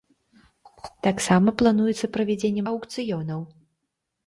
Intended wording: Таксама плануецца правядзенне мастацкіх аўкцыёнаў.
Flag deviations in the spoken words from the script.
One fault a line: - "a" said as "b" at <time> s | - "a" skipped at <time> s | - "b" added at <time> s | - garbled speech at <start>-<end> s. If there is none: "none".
- "мастацкіх" skipped at 2.6 s